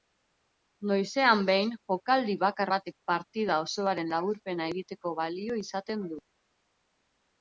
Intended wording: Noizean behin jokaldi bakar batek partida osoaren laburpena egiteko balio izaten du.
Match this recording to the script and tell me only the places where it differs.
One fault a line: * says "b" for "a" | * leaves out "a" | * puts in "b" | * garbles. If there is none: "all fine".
all fine